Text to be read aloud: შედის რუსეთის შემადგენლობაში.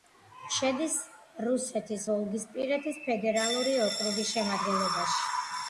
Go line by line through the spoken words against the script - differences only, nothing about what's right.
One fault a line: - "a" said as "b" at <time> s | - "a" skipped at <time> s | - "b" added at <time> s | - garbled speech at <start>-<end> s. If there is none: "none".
- "ვოლგისპირეთის ფედერალური ოკრუგის" added at 2.1 s